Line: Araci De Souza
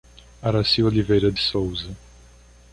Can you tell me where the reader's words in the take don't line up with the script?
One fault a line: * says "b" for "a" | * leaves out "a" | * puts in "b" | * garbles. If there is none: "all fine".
* puts in "Oliveira"